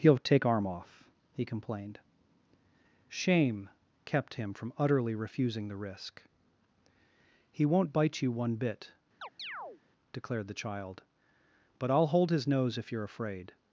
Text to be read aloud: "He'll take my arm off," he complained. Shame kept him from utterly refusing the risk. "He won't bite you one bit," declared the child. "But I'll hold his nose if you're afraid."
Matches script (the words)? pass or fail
fail